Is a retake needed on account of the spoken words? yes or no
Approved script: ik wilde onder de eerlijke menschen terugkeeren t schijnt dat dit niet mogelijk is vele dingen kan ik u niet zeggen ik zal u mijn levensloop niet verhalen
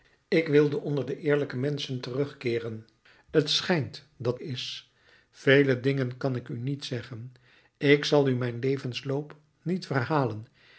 yes